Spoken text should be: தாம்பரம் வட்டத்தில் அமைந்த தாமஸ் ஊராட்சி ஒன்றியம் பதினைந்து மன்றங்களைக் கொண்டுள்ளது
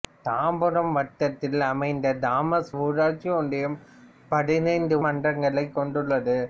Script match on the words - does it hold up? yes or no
yes